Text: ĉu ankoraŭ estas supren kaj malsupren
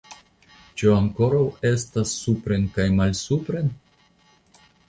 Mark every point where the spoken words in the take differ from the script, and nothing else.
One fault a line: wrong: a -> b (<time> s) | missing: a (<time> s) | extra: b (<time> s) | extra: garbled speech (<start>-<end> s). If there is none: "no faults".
no faults